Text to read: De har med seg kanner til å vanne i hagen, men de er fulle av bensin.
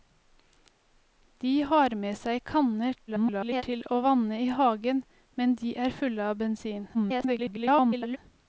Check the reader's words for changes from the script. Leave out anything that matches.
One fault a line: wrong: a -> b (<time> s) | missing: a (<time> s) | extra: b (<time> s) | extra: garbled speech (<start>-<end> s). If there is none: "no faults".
extra: garbled speech (3.1-3.6 s)
extra: garbled speech (6.9-8.2 s)